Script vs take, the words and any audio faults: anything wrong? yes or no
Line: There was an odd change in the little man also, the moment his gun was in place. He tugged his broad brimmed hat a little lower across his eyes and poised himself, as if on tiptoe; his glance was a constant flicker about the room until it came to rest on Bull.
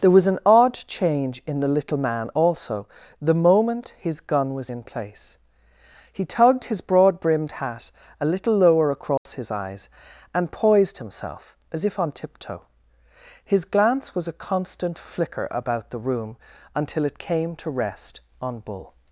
yes